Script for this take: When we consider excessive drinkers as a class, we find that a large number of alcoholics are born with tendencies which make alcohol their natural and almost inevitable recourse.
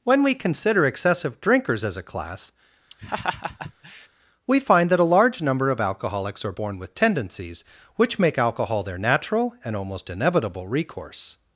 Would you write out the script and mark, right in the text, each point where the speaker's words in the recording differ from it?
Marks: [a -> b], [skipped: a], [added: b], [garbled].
When we consider excessive drinkers as a class, we find that a large number of alcoholics are born with tendencies which make alcohol their natural and almost inevitable recourse.